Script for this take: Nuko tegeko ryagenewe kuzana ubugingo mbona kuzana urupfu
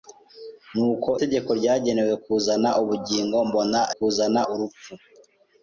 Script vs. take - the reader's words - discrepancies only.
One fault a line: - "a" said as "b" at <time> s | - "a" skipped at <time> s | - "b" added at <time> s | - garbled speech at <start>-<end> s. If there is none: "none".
none